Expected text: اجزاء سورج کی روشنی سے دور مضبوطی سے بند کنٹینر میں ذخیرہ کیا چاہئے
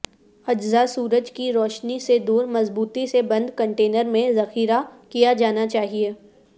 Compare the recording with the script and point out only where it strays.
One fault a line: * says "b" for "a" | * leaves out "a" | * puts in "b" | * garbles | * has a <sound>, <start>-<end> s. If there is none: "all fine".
* puts in "جانا"